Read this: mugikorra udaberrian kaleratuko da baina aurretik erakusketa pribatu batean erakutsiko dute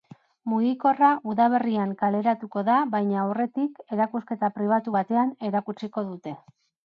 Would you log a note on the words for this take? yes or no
no